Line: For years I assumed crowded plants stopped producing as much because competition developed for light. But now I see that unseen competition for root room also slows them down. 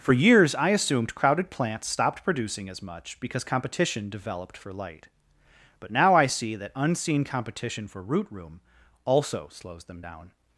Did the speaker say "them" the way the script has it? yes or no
yes